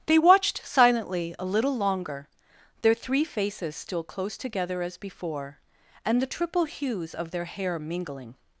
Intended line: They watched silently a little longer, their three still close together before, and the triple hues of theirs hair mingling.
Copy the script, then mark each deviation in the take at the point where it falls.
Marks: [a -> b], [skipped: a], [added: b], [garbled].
They watched silently a little longer, their three [added: faces] still close together [added: as] before, and the triple hues of [theirs -> their] hair mingling.